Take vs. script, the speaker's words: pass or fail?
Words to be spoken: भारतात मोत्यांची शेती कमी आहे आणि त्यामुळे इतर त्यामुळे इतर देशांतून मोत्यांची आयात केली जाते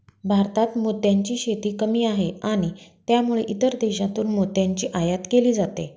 fail